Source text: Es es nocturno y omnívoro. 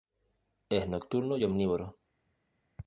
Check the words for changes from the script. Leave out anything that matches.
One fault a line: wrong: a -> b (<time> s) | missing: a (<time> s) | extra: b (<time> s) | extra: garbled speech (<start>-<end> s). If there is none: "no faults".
missing: es (0.9 s)